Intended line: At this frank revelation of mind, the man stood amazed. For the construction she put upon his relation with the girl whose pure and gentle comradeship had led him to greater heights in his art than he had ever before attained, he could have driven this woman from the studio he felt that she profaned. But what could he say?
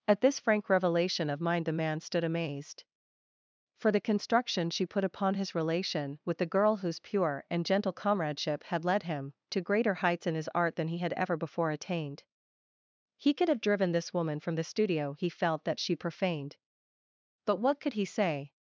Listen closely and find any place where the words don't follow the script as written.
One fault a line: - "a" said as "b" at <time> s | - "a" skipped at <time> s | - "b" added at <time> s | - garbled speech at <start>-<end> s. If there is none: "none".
none